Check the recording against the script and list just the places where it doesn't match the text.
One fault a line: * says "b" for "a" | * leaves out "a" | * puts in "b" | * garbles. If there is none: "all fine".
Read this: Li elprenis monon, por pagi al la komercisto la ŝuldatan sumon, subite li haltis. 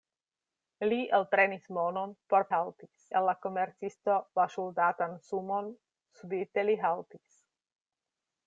* says "haltis" for "pagi"